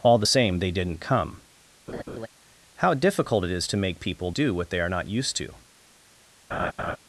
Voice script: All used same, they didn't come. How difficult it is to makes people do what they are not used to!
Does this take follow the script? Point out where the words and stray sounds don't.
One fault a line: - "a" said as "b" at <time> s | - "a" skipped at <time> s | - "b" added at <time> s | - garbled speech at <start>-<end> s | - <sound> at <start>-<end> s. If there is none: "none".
- "used" said as "the" at 0.2 s
- laugh at 1.9-2.3 s
- "makes" said as "make" at 3.8 s
- laugh at 6.5-7.0 s